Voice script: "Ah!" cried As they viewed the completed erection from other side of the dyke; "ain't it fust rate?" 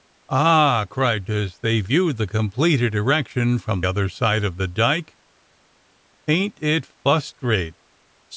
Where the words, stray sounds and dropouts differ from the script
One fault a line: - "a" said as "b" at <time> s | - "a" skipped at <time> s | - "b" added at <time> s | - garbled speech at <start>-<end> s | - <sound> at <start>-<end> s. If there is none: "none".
none